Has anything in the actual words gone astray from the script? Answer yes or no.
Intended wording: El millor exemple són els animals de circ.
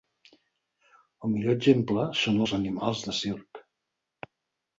no